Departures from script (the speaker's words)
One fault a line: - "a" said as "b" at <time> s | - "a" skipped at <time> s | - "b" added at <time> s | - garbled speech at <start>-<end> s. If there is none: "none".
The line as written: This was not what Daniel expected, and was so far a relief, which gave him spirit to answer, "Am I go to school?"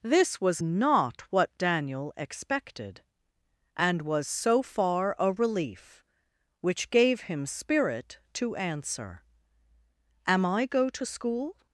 none